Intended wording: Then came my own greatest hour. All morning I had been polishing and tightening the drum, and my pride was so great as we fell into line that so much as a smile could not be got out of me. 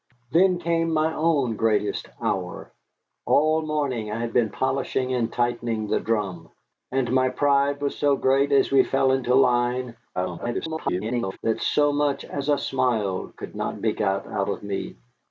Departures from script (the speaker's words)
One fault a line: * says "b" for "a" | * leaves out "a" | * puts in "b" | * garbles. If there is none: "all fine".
* garbles